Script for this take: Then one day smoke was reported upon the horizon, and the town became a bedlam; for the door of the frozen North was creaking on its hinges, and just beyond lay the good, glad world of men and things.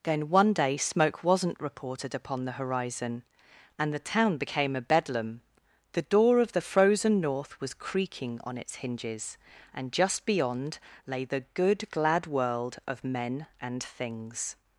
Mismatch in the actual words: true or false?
true